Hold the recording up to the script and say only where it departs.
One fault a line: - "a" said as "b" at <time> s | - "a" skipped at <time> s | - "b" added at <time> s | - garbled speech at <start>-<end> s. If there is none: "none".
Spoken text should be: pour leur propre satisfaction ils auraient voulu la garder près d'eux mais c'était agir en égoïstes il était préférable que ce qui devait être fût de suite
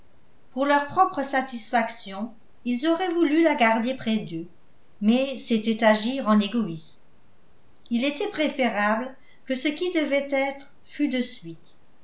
none